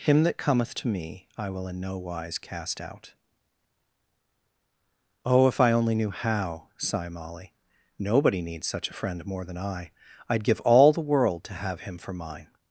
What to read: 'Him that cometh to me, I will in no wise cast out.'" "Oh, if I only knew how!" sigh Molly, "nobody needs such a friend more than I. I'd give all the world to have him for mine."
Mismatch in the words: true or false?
false